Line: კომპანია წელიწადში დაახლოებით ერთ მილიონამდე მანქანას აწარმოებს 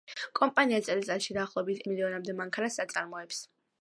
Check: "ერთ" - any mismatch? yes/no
yes